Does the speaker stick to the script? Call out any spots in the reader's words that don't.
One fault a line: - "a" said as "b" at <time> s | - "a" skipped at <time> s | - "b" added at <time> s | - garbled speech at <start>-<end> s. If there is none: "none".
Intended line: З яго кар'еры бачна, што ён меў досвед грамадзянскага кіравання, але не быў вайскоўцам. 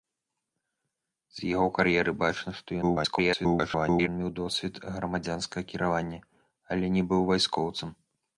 - garbled speech at 2.8-4.1 s